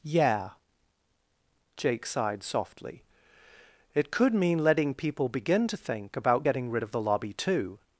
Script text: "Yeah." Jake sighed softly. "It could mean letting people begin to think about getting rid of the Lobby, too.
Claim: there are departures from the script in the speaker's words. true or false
false